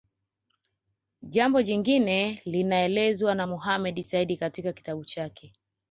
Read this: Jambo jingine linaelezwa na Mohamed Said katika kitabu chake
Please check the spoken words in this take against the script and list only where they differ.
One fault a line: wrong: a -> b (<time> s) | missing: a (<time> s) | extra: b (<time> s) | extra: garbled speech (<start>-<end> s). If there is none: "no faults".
no faults